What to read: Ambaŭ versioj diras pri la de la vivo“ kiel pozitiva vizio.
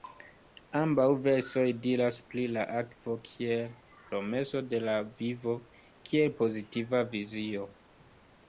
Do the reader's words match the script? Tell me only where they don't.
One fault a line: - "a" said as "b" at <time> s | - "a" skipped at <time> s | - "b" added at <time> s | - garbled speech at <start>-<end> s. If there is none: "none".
- "akvo kiel promeso" added at 2.8 s